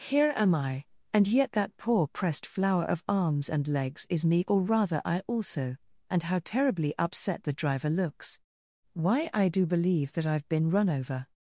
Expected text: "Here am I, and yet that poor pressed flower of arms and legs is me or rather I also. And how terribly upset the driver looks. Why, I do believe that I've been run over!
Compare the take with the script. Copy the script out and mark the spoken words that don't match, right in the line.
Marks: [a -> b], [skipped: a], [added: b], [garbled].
"Here am I, and yet that poor pressed flower of arms and legs is me or rather I also. And how terribly upset the driver looks. Why, I do believe that I've been run over!